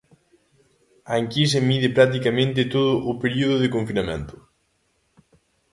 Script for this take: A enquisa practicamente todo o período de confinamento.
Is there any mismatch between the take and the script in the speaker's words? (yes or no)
yes